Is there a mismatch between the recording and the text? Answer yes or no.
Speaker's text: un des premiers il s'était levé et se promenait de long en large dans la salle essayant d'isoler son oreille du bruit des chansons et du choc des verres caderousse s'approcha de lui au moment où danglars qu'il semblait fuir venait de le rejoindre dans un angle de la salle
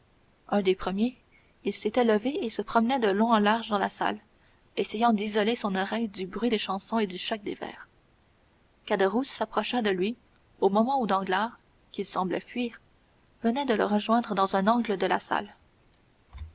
no